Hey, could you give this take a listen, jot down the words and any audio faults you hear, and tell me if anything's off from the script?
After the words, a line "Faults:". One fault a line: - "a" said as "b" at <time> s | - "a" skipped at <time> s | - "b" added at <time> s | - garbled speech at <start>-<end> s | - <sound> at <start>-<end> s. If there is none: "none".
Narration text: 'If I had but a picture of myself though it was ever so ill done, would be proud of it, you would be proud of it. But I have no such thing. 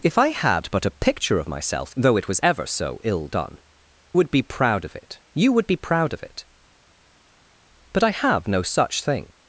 'If I had but a picture of myself though it was ever so ill done, would be proud of it, you would be proud of it. But I have no such thing.
Faults:
none